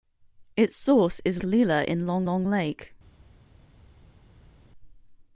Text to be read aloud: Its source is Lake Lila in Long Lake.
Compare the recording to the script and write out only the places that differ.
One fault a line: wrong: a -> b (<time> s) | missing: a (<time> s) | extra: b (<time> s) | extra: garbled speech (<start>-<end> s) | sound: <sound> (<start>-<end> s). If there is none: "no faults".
missing: Lake (1.4 s)
extra: Long (2.2 s)